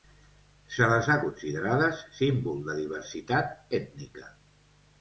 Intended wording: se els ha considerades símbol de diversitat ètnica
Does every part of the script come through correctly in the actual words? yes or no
no